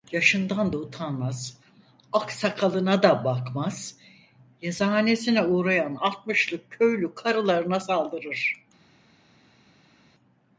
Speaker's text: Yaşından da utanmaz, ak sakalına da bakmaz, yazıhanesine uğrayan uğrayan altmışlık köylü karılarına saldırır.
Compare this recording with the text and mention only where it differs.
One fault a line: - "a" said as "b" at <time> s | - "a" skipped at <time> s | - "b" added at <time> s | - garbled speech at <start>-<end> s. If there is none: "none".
- "uğrayan" skipped at 6.0 s